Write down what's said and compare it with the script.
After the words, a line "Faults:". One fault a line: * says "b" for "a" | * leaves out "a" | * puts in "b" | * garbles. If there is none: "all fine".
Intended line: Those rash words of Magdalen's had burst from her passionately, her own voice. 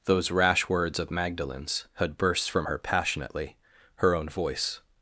Those rash words of Magdalen's had burst from her passionately, her own voice.
Faults:
all fine